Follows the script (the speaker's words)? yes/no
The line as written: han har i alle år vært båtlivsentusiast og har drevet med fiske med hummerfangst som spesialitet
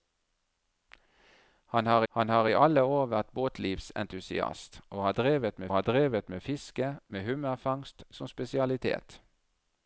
no